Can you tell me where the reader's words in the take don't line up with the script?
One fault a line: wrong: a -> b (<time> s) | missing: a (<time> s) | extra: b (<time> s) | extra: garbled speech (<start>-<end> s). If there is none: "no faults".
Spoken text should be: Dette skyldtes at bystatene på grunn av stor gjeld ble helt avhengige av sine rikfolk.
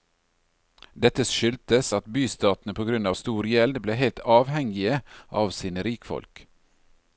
no faults